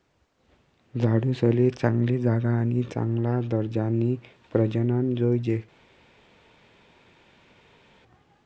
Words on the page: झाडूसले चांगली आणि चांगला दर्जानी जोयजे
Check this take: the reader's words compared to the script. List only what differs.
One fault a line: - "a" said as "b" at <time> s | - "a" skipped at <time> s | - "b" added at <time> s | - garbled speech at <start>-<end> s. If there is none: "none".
- "जागा" added at 2.2 s
- "प्रजनन" added at 4.5 s